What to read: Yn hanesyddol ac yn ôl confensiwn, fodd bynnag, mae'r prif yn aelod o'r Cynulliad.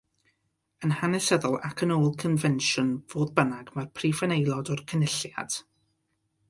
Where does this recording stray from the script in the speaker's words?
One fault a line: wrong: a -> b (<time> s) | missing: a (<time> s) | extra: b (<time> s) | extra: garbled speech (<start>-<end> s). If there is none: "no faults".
no faults